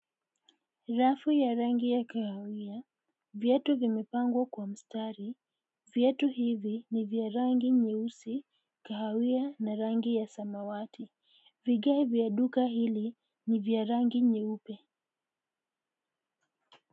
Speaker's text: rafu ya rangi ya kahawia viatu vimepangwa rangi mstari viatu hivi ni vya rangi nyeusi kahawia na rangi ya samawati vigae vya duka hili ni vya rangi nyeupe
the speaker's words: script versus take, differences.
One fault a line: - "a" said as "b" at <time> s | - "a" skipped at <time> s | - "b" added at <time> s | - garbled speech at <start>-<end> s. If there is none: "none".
- "rangi" said as "kwa" at 4.5 s